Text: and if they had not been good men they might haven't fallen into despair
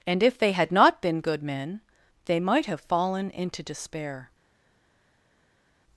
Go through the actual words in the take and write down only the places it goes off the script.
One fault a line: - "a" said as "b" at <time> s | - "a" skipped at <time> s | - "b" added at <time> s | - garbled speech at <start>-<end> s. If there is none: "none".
- "haven't" said as "have" at 2.7 s